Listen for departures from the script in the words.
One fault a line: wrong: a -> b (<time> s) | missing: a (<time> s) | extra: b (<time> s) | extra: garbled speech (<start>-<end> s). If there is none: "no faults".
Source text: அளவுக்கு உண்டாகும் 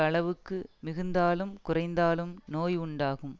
extra: மிகுந்தாலும் குறைந்தாலும் நோய் (0.8 s)